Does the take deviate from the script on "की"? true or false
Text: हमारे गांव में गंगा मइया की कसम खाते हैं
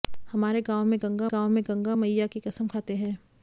false